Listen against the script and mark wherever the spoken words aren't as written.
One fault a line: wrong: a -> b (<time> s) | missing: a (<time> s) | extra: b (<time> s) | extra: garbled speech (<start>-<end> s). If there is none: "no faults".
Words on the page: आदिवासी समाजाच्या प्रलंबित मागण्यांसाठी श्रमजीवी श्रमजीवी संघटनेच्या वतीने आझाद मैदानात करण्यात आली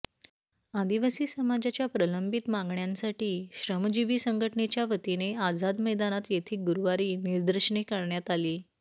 missing: श्रमजीवी (4.2 s)
extra: येथे गुरुवारी निदर्शने (6.3 s)